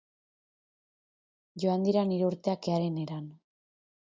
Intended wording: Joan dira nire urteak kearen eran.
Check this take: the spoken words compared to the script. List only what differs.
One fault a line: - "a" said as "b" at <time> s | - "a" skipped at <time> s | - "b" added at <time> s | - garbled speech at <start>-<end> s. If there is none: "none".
none